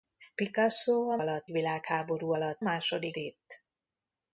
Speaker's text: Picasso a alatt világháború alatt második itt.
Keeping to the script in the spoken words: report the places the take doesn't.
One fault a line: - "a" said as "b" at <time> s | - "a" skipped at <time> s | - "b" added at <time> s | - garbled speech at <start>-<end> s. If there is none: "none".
none